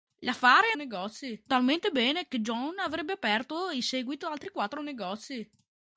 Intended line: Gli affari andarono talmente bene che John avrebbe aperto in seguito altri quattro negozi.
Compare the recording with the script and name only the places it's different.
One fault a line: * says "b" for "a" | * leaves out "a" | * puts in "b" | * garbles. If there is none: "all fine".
* says "negozi" for "andarono"